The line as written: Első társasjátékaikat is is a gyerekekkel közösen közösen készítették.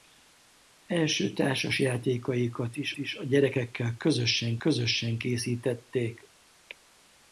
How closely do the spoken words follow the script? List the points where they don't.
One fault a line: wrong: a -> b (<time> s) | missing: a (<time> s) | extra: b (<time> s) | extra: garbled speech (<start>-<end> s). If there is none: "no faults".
no faults